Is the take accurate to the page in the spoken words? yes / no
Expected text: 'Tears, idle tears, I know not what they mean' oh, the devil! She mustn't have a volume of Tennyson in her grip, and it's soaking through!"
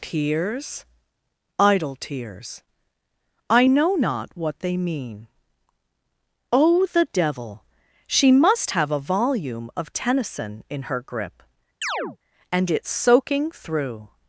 no